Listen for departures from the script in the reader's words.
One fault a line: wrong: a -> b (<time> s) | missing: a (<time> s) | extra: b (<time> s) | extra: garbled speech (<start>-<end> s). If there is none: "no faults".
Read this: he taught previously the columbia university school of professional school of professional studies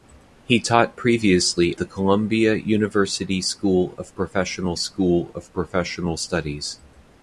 no faults